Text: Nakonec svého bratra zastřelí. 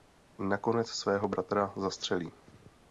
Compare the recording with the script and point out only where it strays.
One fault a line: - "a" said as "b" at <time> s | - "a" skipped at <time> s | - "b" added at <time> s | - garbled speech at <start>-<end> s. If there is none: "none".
none